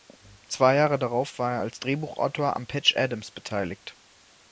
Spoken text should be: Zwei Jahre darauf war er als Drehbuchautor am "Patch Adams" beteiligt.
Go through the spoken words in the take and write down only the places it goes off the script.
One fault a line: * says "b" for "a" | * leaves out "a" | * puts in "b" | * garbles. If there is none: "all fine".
all fine